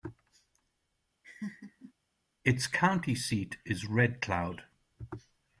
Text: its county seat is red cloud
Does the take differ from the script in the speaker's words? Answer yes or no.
no